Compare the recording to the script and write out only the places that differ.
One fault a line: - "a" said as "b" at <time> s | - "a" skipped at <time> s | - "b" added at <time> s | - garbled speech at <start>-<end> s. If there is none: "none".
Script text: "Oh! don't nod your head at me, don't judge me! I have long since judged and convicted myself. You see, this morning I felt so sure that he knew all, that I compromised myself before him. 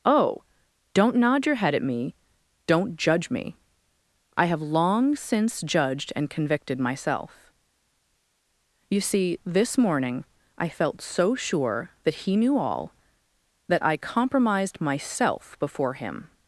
none